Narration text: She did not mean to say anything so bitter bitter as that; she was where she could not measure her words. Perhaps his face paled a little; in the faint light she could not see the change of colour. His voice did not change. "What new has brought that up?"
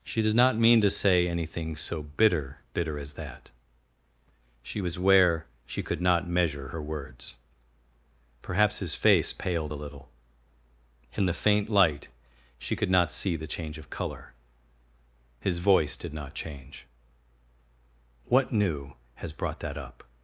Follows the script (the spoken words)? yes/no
yes